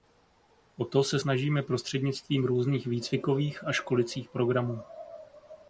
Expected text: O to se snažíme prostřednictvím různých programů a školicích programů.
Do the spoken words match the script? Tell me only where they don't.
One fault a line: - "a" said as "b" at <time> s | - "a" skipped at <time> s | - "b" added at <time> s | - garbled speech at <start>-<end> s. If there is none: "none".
- "programů" said as "výcvikových" at 2.9 s